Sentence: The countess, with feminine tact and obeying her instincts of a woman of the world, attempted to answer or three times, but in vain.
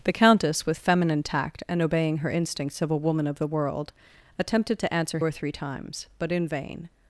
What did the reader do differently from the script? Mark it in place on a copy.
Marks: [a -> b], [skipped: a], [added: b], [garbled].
The countess, with feminine tact and obeying her instincts of a woman of the world, attempted to answer or three times, but in vain.